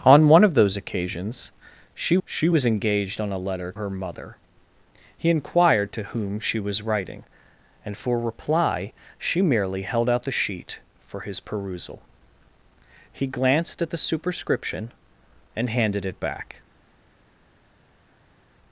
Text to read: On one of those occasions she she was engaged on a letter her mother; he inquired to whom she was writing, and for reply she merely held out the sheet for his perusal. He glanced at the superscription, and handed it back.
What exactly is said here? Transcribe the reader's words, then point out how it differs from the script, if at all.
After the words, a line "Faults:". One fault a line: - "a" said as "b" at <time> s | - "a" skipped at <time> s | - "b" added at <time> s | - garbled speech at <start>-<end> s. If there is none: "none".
On one of those occasions she she was engaged on a letter her mother; he inquired to whom she was writing, and for reply she merely held out the sheet for his perusal. He glanced at the superscription, and handed it back.
Faults:
none